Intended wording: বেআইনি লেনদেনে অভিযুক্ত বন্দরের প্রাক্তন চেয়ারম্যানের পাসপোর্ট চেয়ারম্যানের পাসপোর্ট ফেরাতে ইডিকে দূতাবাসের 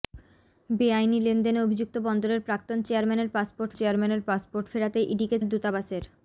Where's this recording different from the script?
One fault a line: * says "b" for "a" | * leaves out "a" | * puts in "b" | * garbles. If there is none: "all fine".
all fine